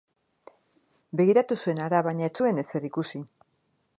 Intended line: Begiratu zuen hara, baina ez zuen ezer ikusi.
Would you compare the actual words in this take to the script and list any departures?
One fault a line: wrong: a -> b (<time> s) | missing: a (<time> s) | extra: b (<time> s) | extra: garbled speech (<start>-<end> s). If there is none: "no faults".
no faults